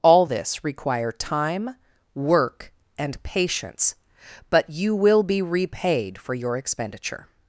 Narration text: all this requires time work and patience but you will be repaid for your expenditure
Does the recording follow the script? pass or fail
fail